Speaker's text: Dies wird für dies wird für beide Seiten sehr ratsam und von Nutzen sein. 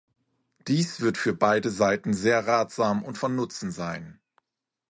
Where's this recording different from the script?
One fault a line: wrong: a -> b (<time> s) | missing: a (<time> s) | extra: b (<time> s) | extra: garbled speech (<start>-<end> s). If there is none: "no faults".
missing: dies wird für (1.4 s)